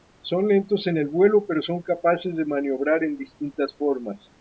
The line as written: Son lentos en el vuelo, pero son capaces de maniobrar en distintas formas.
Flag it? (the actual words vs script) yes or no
no